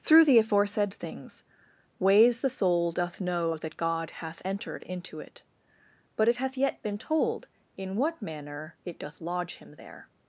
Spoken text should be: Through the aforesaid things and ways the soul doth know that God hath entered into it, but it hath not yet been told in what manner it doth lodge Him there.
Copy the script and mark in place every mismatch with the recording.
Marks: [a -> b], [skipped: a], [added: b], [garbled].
Through the aforesaid things [skipped: and] ways the soul doth know that God hath entered into it, but it hath [skipped: not] yet been told in what manner it doth lodge Him there.